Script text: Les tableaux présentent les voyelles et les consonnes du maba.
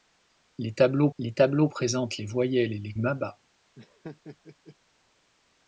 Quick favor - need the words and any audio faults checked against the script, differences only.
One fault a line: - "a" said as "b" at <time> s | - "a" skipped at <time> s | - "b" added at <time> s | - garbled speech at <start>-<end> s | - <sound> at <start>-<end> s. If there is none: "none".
- "les tableaux" added at 1.2 s
- "consonnes du" skipped at 2.9 s
- laugh at 3.8-4.8 s